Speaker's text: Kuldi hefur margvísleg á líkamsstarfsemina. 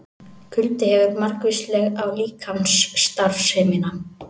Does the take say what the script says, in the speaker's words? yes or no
yes